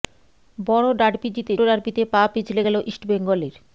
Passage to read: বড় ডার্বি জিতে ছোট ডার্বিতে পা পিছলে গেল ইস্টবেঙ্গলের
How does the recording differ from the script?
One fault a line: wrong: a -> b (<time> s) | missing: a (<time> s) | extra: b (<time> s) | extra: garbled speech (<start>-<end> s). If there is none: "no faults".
missing: ছোট (1.5 s)